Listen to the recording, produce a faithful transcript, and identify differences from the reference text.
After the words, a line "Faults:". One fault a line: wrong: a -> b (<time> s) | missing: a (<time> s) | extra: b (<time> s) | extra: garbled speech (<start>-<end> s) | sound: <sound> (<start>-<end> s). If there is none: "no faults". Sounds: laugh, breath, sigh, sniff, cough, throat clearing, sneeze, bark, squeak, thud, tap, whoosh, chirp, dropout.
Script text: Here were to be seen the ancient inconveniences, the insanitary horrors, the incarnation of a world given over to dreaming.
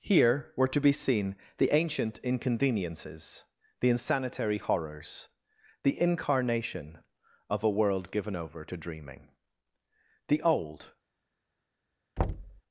Here were to be seen the ancient inconveniences, the insanitary horrors, the incarnation of a world given over to dreaming. The old
Faults:
extra: The old (10.3 s)
sound: thud (12.2-12.6 s)